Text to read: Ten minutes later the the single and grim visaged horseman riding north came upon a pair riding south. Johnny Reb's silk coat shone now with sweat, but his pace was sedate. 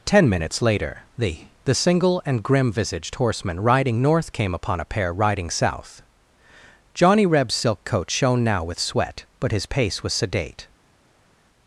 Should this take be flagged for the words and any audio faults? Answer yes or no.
no